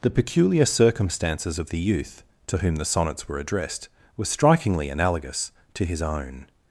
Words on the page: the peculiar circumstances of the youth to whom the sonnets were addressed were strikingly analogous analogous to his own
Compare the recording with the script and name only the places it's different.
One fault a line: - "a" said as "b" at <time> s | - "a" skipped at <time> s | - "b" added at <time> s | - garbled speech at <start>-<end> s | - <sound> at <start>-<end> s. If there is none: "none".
- "analogous" skipped at 5.5 s